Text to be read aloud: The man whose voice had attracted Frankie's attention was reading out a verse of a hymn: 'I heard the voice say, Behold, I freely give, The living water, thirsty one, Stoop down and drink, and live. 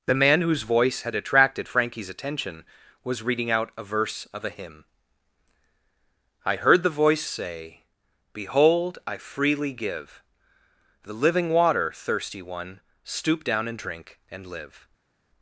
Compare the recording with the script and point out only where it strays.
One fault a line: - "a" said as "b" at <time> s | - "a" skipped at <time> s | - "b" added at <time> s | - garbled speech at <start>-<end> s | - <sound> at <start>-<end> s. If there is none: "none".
none